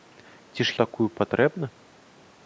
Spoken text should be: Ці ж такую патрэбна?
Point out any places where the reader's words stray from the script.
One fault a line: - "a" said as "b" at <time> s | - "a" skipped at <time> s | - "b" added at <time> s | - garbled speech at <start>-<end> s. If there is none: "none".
none